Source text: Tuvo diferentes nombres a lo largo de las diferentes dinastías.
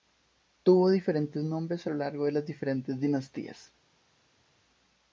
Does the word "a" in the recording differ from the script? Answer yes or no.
no